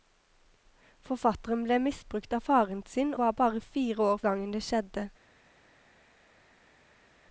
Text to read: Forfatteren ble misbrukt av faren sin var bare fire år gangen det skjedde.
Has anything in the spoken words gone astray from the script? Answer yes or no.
no